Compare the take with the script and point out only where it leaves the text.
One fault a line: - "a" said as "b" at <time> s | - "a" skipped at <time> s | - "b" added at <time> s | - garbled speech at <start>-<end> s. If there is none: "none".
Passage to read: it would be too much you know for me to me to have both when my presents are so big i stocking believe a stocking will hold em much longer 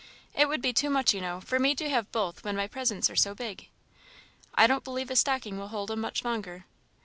- "me to" skipped at 1.9 s
- "stocking" said as "don't" at 4.7 s